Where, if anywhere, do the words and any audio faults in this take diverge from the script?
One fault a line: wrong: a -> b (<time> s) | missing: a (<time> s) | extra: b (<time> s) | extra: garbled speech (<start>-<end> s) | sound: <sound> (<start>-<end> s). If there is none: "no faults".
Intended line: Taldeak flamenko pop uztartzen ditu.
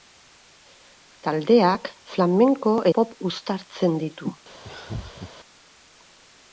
sound: laugh (4.6-5.3 s)